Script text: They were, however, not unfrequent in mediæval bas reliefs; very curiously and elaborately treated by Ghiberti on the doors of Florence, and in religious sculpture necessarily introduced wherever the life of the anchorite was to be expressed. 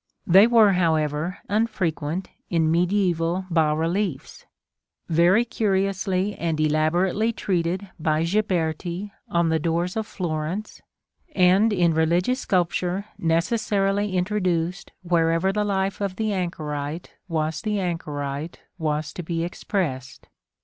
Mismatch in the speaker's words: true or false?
true